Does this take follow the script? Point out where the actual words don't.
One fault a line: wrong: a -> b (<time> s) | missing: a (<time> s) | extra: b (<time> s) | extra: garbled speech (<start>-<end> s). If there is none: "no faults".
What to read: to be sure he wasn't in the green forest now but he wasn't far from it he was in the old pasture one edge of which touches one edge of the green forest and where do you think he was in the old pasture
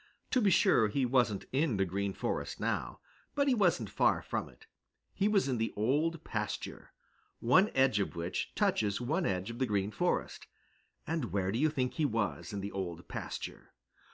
no faults